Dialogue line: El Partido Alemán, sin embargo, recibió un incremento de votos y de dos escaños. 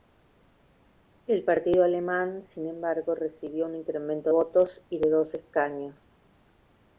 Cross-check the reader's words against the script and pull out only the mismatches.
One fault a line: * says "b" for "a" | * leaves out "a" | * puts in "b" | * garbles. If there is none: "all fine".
* leaves out "de"